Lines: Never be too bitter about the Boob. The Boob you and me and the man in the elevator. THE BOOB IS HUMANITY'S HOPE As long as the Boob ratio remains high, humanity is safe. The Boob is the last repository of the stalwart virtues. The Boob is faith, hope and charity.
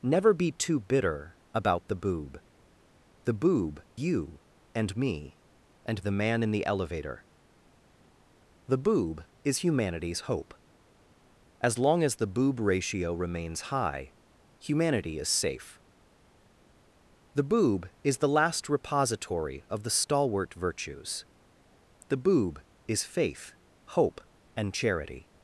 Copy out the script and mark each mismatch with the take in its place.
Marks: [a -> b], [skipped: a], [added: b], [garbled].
Never be too bitter about the Boob. The Boob you and me and the man in the elevator. THE BOOB IS HUMANITY'S HOPE As long as the Boob ratio remains high, humanity is safe. The Boob is the last repository of the stalwart virtues. The Boob is faith, hope and charity.